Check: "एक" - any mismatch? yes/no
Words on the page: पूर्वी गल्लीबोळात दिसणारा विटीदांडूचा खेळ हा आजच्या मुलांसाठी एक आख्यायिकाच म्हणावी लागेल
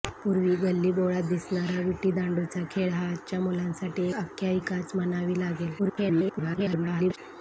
yes